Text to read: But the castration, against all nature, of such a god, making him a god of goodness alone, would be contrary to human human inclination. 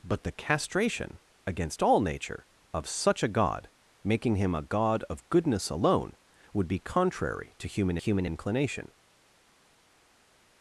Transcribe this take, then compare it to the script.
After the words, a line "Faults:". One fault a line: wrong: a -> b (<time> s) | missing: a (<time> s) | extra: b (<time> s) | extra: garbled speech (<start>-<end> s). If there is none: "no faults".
But the castration, against all nature, of such a god, making him a god of goodness alone, would be contrary to human human inclination.
Faults:
no faults